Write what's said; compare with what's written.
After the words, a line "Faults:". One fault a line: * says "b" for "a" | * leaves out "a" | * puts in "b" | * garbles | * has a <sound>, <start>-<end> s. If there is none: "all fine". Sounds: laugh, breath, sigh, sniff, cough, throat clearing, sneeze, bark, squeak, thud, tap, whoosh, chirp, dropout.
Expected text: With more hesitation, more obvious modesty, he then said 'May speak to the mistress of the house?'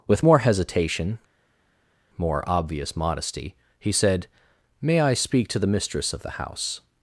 With more hesitation, more obvious modesty, he said 'May I speak to the mistress of the house?'
Faults:
* leaves out "then"
* puts in "I"